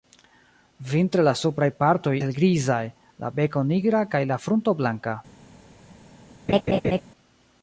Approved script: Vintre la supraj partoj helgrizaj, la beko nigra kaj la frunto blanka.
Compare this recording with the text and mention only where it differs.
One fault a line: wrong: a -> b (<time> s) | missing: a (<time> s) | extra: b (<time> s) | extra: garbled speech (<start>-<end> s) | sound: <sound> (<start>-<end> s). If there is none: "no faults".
sound: laugh (6.5-7.0 s)